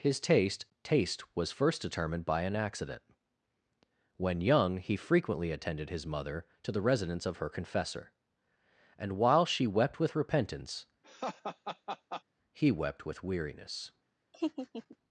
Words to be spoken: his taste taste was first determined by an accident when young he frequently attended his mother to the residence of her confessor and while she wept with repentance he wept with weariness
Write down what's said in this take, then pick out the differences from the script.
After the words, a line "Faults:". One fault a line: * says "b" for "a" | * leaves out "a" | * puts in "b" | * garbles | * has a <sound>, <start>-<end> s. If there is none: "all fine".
his taste taste was first determined by an accident when young he frequently attended his mother to the residence of her confessor and while she wept with repentance he wept with weariness
Faults:
* has a laugh, 11.0-12.2 s
* has a laugh, 14.3-15.0 s